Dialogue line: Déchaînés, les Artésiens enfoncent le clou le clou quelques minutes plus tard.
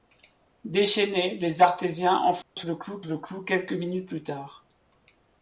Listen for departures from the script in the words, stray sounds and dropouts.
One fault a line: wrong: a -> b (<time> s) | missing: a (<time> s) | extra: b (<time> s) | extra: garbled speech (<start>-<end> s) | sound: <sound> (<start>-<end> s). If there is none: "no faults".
sound: dropout (2.4-2.6 s)